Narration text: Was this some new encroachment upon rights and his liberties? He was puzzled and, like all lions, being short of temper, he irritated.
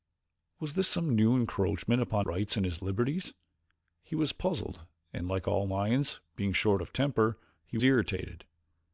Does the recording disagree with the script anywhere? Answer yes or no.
no